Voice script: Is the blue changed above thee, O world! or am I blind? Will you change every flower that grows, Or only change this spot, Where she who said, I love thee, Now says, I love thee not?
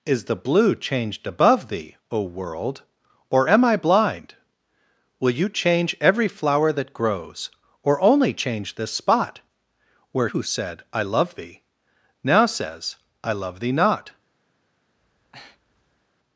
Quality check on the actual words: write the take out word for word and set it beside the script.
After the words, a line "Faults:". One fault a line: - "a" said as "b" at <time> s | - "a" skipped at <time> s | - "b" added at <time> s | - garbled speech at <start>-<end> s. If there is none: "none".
Is the blue changed above thee, O world! or am I blind? Will you change every flower that grows, Or only change this spot, Where who said, I love thee, Now says, I love thee not?
Faults:
- "she" skipped at 10.3 s